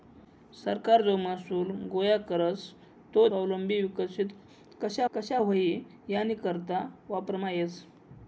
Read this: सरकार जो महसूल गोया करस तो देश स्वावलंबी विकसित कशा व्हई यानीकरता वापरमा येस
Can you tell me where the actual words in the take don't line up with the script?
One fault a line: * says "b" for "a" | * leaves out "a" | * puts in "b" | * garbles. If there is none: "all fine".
* leaves out "देश"
* puts in "कशा"